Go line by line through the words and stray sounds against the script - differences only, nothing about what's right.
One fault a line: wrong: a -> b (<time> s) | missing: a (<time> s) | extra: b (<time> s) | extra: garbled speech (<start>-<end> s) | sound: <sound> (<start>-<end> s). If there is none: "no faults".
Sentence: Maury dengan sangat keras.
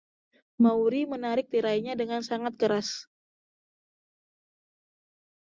extra: menarik tirainya (1.1 s)